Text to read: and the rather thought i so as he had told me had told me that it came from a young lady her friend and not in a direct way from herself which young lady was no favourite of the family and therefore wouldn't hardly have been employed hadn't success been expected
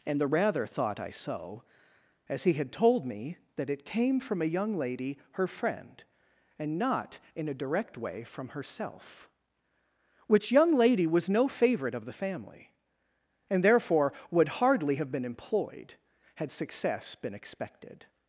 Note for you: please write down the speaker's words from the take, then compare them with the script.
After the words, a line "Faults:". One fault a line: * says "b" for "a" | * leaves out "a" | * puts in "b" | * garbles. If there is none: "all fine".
and the rather thought i so as he had told me that it came from a young lady her friend and not in a direct way from herself which young lady was no favourite of the family and therefore would hardly have been employed had success been expected
Faults:
* leaves out "had told me"
* says "would" for "wouldn't"
* says "had" for "hadn't"